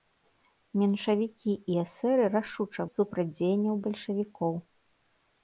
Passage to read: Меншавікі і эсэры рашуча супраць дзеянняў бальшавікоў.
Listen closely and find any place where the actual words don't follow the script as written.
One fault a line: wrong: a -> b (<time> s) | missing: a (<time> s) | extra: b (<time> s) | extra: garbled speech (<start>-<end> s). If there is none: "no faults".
no faults